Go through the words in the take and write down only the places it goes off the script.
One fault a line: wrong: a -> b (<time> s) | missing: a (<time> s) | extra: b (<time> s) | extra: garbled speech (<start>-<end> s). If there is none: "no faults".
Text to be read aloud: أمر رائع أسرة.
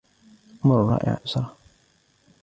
no faults